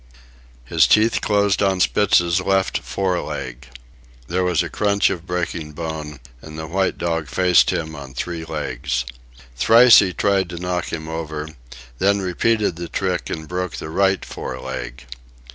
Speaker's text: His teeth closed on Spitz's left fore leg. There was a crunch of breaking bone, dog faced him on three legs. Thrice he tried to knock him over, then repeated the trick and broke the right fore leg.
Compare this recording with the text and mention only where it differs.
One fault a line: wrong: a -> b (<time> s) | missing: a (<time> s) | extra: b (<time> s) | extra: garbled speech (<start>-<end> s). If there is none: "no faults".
extra: and the white (6.4 s)